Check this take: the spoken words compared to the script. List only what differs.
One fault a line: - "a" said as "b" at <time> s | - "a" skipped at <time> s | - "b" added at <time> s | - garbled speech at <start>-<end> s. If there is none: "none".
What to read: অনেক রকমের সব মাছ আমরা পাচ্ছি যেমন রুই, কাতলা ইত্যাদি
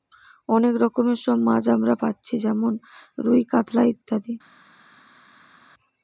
none